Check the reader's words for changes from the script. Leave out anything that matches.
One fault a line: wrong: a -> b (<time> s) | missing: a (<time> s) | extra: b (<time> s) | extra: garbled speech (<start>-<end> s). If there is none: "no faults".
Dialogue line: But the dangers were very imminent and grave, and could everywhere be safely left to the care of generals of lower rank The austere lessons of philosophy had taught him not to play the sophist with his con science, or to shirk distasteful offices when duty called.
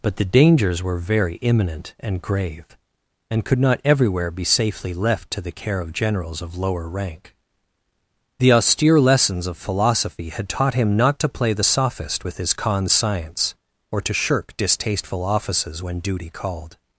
extra: not (3.6 s)